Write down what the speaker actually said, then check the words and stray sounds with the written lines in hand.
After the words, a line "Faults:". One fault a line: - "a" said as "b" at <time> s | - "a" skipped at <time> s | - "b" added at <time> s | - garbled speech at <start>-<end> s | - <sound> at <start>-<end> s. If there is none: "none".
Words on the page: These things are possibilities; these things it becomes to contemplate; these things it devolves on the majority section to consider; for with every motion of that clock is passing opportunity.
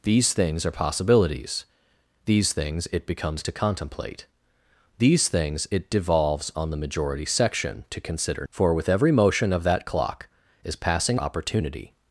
These things are possibilities; these things it becomes to contemplate; these things it devolves on the majority section to consider; for with every motion of that clock is passing opportunity.
Faults:
none